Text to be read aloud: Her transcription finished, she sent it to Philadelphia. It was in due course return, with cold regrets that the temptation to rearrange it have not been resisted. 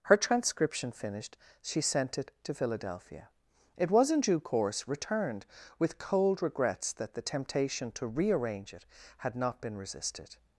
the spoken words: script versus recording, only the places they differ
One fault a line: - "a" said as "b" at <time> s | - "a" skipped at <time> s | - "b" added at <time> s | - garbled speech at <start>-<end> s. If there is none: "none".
- "return" said as "returned" at 4.9 s
- "have" said as "had" at 9.2 s